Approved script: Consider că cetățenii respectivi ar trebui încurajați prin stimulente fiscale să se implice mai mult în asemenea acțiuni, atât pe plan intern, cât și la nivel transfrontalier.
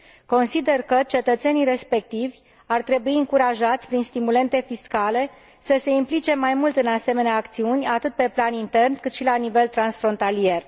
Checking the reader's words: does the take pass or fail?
pass